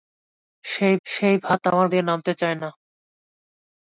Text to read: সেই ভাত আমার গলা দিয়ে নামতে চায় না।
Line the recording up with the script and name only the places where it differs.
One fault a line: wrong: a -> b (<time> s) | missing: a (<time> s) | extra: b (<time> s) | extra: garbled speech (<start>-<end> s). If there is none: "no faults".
extra: সেই (1.1 s)
missing: গলা (1.9 s)